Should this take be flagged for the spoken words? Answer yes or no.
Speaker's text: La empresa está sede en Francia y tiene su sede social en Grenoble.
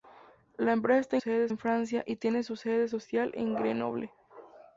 no